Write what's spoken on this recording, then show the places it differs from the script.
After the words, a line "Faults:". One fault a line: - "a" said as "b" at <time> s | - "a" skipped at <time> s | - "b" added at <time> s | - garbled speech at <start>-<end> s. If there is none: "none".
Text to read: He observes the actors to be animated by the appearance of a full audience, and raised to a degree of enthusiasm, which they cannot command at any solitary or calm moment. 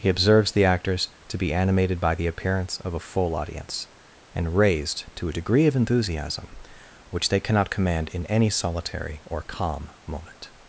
He observes the actors to be animated by the appearance of a full audience, and raised to a degree of enthusiasm, which they cannot command in any solitary or calm moment.
Faults:
- "at" said as "in" at 8.1 s